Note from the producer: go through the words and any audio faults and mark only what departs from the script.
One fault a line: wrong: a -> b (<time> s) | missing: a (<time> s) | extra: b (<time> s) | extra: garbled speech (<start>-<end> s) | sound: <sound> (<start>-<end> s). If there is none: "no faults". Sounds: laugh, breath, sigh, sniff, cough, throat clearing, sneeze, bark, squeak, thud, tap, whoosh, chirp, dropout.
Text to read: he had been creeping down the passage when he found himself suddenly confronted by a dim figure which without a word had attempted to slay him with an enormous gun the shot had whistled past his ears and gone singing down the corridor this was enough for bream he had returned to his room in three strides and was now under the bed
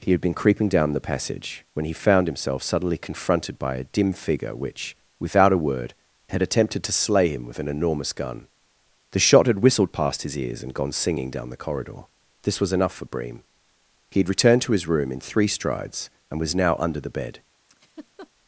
sound: laugh (17.7-18.3 s)